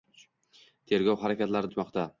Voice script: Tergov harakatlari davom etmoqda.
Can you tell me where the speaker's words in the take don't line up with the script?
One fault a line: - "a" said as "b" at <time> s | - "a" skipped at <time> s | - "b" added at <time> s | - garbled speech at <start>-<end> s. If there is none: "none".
- "davom" skipped at 1.7 s